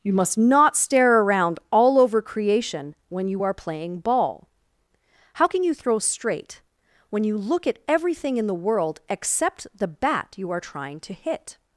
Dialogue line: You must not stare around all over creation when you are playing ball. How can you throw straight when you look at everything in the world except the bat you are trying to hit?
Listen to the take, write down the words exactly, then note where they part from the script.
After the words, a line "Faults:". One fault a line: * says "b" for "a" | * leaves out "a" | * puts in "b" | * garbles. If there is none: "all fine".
You must not stare around all over creation when you are playing ball. How can you throw straight when you look at everything in the world except the bat you are trying to hit?
Faults:
all fine